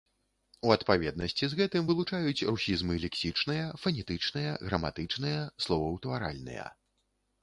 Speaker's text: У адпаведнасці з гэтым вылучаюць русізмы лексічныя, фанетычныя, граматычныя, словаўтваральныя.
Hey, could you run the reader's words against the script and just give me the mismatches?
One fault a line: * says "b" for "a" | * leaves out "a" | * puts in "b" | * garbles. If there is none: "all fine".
all fine